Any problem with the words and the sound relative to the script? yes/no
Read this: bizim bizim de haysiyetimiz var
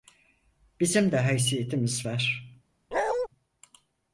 yes